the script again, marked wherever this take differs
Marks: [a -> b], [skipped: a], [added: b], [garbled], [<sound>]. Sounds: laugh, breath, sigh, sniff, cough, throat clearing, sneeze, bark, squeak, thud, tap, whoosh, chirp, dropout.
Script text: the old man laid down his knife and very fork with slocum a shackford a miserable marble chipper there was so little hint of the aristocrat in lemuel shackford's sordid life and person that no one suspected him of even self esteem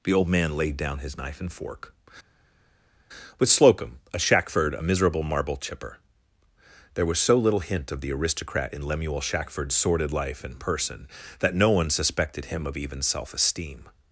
the old man laid down his knife and [skipped: very] fork with slocum a shackford a miserable marble chipper there was so little hint of the aristocrat in lemuel shackford's sordid life and person that no one suspected him of even self esteem